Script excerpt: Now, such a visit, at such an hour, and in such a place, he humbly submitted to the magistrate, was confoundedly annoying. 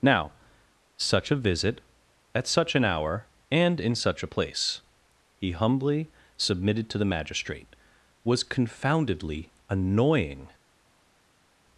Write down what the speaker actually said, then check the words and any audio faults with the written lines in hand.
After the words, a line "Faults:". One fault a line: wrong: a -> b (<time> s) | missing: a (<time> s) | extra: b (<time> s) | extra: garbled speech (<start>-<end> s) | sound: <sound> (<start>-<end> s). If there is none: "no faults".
Now, such a visit, at such an hour, and in such a place, he humbly submitted to the magistrate, was confoundedly annoying.
Faults:
no faults